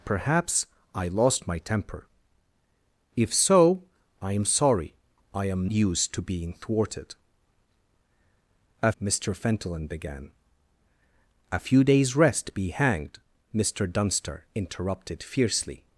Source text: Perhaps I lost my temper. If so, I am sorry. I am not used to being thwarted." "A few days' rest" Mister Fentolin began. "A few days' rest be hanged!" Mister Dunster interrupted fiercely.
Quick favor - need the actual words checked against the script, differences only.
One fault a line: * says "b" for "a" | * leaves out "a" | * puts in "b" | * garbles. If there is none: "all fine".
* leaves out "not"
* leaves out "few days rest"